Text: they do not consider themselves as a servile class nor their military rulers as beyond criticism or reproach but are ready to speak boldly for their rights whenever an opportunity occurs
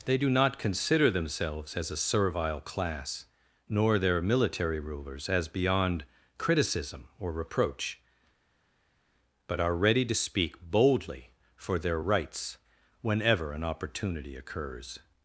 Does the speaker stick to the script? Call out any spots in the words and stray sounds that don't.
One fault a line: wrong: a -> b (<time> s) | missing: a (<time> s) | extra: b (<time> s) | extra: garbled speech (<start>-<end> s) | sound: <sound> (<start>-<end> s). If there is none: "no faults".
no faults